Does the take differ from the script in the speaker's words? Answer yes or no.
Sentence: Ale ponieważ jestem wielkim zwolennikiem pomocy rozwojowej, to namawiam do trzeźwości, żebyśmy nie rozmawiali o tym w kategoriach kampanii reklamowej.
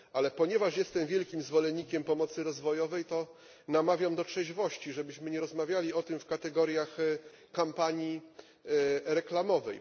no